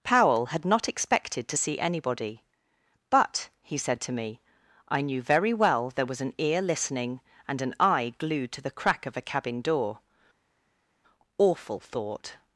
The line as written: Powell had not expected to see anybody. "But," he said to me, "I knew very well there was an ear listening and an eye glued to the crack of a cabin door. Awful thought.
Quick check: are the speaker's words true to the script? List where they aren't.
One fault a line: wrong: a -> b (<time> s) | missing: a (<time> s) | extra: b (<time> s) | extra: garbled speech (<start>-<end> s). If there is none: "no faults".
no faults